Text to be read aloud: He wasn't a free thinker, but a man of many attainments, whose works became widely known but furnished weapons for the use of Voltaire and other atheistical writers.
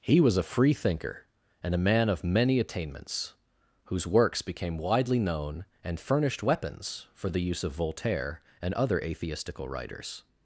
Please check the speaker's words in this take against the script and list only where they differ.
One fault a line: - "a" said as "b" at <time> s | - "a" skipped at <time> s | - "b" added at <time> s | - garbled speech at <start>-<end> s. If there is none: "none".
- "wasn't" said as "was" at 0.2 s
- "but" said as "and" at 1.6 s
- "but" said as "and" at 5.8 s